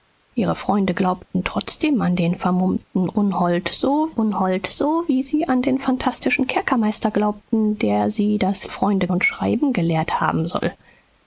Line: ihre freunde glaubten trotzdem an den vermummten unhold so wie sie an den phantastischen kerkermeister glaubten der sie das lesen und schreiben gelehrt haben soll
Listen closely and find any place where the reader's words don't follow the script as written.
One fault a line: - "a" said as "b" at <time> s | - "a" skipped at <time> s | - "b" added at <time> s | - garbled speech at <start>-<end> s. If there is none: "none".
- "unhold so" added at 4.1 s
- "lesen" said as "freunde" at 8.7 s